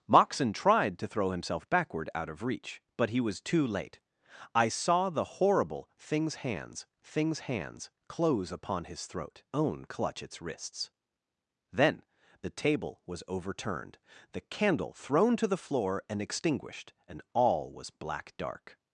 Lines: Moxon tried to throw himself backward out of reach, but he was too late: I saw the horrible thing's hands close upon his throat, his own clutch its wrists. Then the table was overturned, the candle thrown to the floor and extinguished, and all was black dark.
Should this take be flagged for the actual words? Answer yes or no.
yes